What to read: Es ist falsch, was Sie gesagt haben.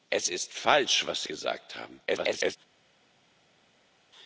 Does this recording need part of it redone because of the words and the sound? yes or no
yes